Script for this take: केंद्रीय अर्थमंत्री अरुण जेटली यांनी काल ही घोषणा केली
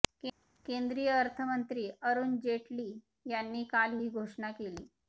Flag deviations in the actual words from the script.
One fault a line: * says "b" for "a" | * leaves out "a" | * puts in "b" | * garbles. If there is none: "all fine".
all fine